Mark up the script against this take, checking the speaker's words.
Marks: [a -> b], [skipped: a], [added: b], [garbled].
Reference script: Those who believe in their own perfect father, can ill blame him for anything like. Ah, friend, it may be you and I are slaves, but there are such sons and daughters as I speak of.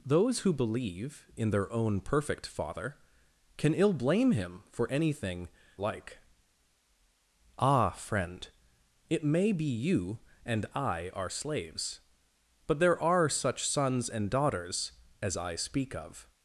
Those who believe in their own perfect father, can ill blame him for anything like. Ah, friend, it may be you and I are slaves, but there are such sons and daughters as I speak of.